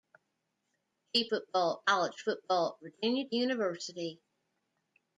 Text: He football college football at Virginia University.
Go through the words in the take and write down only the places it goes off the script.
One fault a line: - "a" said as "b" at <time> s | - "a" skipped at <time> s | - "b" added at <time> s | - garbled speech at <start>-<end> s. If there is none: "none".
none